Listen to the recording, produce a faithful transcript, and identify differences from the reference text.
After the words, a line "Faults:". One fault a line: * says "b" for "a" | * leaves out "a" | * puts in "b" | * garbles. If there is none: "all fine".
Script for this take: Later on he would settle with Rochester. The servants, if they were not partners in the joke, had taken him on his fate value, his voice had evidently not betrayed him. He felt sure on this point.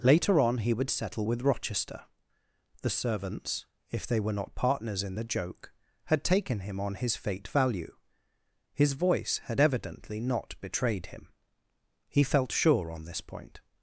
Later on he would settle with Rochester. The servants, if they were not partners in the joke, had taken him on his fate value, his voice had evidently not betrayed him. He felt sure on this point.
Faults:
all fine